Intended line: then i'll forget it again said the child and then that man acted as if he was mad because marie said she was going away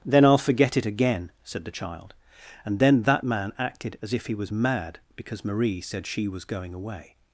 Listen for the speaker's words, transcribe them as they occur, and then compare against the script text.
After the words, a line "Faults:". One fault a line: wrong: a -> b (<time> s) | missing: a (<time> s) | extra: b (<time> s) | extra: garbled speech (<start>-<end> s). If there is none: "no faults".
then i'll forget it again said the child and then that man acted as if he was mad because marie said she was going away
Faults:
no faults